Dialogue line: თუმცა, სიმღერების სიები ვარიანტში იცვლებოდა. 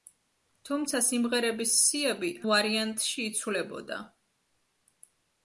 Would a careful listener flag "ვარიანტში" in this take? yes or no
no